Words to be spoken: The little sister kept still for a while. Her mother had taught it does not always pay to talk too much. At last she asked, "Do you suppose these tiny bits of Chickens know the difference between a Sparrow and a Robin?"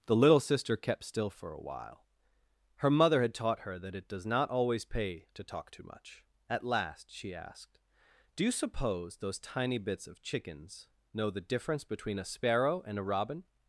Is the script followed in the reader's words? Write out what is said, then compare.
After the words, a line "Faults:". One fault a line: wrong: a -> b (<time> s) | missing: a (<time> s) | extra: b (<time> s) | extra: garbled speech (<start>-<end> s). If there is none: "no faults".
The little sister kept still for a while. Her mother had taught her that it does not always pay to talk too much. At last she asked, "Do you suppose those tiny bits of Chickens know the difference between a Sparrow and a Robin?"
Faults:
extra: her that (3.6 s)
wrong: these -> those (9.2 s)